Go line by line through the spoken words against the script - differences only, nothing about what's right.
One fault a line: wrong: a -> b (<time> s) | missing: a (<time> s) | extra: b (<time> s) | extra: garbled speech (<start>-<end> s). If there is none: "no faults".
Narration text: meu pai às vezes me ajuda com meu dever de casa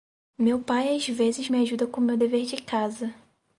no faults